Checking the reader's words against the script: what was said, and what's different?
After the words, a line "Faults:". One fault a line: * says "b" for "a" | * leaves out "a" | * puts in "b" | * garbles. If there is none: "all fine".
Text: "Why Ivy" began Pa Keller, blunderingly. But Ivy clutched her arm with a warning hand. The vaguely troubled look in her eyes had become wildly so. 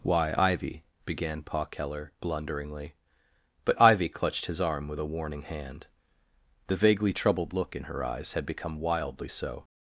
"Why Ivy" began Pa Keller, blunderingly. But Ivy clutched his arm with a warning hand. The vaguely troubled look in her eyes had become wildly so.
Faults:
* says "his" for "her"